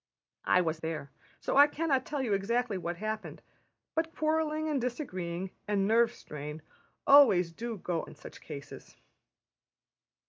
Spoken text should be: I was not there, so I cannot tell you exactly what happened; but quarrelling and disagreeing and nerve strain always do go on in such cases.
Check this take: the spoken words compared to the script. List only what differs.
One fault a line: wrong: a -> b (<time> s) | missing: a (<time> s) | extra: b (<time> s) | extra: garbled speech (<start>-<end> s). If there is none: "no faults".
missing: not (0.8 s)
missing: on (8.0 s)